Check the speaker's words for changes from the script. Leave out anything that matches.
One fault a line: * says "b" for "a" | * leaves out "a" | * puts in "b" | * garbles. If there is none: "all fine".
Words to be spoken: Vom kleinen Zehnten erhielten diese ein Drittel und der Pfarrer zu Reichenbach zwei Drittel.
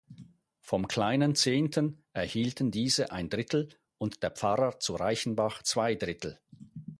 all fine